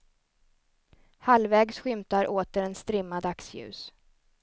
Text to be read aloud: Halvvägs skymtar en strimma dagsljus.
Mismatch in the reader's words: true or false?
true